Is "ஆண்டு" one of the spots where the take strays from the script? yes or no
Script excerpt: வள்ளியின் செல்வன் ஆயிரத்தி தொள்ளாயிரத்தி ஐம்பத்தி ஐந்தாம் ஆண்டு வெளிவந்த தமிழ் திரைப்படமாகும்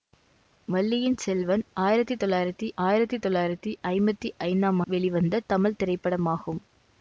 yes